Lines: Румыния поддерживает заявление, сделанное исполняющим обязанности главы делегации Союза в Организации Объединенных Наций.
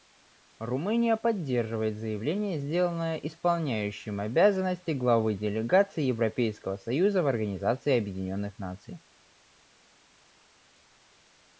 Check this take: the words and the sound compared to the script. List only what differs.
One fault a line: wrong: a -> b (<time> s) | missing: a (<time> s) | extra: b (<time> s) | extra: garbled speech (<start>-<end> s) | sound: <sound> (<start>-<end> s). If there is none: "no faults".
extra: Европейского (6.0 s)